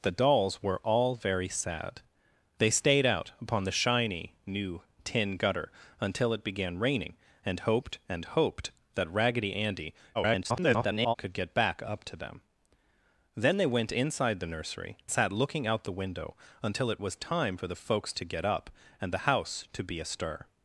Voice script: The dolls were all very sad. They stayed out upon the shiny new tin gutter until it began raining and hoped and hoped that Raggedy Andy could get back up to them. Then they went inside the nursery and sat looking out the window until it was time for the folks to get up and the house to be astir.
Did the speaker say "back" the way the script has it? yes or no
yes